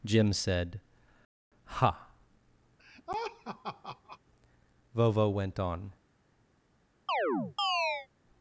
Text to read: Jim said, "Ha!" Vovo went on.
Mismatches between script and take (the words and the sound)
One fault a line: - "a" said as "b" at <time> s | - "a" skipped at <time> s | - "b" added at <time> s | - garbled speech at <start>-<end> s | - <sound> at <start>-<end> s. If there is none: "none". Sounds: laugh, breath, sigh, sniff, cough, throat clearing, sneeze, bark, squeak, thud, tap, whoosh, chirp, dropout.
- laugh at 2.8-4.2 s
- chirp at 7.1-8.1 s